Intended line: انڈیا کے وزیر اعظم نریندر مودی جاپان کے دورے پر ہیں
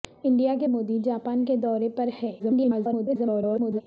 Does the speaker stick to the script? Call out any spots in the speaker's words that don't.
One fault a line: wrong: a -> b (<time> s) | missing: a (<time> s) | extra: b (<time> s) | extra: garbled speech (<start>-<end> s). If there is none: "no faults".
missing: وزیر اعظم نریندر (0.7 s)
extra: garbled speech (2.4-3.8 s)